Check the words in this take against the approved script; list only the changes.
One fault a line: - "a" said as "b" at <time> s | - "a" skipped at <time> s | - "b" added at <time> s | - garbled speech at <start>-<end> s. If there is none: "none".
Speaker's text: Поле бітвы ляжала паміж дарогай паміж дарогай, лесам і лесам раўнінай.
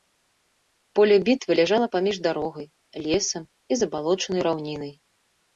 - "паміж дарогай" skipped at 2.7 s
- "лесам" said as "забалочанай" at 3.8 s